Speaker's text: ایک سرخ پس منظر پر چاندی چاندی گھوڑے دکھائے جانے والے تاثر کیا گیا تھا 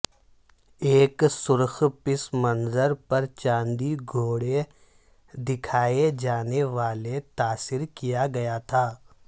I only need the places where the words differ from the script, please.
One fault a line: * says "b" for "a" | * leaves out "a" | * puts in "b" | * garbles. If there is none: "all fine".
* leaves out "چاندی"